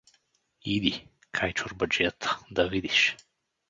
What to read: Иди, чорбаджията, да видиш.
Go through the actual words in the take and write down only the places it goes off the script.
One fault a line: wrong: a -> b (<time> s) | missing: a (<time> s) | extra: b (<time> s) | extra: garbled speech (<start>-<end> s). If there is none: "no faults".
extra: кай (1.3 s)